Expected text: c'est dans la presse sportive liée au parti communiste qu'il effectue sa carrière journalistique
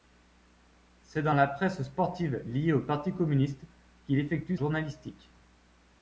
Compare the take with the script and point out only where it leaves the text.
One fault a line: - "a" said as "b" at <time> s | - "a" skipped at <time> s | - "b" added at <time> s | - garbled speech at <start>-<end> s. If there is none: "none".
- "sa carrière" skipped at 4.5 s